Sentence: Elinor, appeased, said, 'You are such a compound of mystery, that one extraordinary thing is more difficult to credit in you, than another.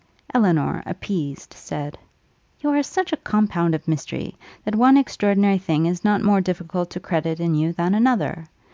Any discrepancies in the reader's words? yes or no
yes